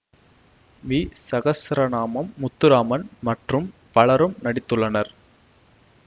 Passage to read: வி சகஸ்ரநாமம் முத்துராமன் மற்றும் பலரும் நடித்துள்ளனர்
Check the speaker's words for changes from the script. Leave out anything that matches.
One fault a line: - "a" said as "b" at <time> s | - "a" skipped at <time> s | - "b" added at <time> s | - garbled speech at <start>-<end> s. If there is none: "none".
none